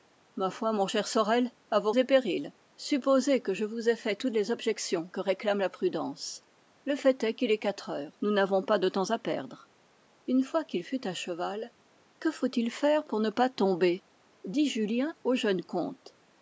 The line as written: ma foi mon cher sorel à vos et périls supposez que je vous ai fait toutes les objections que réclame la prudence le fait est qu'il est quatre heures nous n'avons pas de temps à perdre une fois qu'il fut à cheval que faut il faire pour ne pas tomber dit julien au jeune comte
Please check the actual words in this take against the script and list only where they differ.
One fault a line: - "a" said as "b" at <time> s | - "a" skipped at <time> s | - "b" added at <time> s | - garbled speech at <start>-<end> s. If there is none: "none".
none